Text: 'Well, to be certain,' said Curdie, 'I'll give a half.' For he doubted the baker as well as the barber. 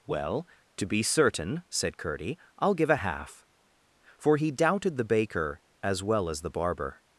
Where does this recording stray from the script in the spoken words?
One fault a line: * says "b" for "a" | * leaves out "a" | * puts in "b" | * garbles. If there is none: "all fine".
all fine